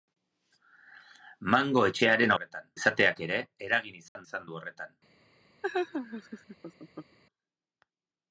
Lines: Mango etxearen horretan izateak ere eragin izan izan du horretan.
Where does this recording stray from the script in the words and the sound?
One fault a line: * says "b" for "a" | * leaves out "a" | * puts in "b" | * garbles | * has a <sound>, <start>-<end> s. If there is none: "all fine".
* has a dropout, 4.1-4.2 s
* has a laugh, 5.6-7.2 s